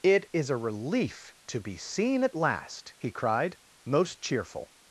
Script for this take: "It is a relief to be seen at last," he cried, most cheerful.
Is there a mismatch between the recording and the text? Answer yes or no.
no